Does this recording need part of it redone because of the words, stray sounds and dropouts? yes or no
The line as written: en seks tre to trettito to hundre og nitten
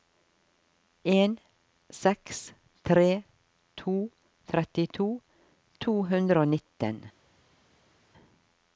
no